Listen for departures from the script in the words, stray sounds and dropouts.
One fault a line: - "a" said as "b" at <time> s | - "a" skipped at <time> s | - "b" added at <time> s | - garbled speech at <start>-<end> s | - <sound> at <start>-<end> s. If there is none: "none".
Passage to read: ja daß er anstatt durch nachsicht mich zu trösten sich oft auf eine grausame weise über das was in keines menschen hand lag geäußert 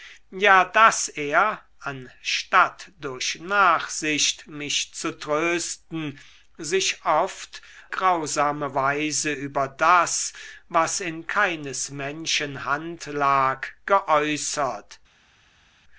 - "auf eine" skipped at 7.6 s